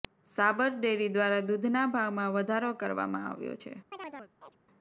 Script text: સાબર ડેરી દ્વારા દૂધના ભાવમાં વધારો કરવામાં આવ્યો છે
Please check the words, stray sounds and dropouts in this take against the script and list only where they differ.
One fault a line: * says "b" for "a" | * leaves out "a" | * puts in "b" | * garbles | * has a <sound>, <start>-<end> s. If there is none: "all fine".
* has a chirp, 3.9-4.6 s